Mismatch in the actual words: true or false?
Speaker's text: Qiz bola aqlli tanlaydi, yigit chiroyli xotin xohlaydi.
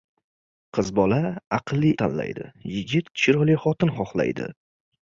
false